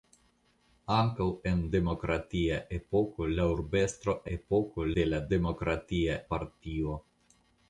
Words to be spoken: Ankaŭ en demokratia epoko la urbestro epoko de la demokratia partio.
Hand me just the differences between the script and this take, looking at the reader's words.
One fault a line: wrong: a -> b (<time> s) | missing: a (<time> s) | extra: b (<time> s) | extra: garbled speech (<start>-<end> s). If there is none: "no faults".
no faults